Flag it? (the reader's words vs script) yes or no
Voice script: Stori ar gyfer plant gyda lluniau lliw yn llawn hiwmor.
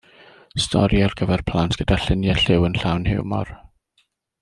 no